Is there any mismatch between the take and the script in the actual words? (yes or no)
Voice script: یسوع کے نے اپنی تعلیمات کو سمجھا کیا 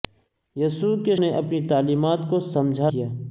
no